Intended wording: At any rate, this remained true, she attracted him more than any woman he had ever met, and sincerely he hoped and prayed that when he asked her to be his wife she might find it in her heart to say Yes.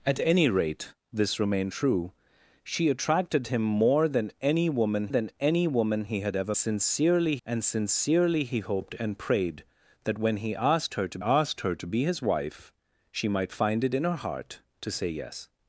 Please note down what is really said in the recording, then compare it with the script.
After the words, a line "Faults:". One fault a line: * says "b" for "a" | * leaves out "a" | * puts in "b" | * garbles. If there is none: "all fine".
At any rate, this remained true, she attracted him more than any woman than any woman he had ever sincerely, and sincerely he hoped and prayed that when he asked her to asked her to be his wife she might find it in her heart to say Yes.
Faults:
* puts in "than any woman"
* says "sincerely" for "met"
* puts in "asked her to"